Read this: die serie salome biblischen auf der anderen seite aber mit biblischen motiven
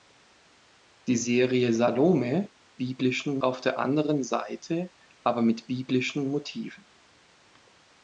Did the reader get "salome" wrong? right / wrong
right